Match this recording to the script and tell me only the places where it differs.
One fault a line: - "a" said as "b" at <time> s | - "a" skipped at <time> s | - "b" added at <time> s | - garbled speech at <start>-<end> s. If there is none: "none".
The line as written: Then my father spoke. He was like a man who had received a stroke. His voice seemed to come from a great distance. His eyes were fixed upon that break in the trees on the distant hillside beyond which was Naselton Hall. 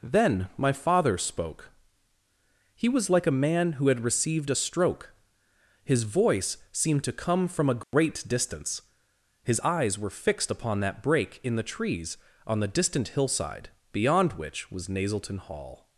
none